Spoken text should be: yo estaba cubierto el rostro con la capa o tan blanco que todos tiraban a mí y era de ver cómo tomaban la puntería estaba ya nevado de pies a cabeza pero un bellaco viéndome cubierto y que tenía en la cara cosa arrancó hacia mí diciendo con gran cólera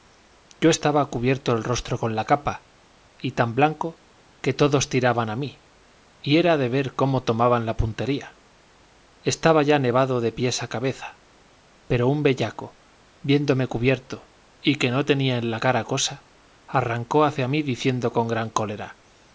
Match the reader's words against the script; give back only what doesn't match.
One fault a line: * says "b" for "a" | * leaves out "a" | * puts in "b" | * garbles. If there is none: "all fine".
* says "y" for "o"
* puts in "no"